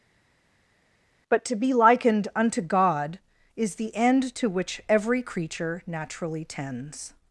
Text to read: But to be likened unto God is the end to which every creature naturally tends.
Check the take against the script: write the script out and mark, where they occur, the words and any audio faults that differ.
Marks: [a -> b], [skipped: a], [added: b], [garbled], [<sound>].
But to be likened unto God is the end to which every creature naturally tends.